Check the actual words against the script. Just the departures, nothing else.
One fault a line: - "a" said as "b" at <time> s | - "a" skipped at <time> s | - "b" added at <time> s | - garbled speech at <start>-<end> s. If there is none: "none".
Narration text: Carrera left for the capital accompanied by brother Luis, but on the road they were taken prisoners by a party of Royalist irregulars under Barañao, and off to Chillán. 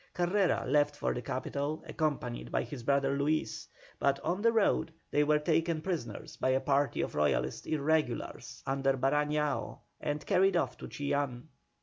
- "his" added at 2.6 s
- "carried" added at 10.2 s